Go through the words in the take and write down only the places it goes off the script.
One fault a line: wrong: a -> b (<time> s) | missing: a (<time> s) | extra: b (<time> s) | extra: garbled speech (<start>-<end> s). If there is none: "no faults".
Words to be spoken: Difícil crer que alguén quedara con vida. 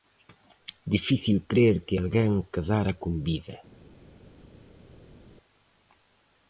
no faults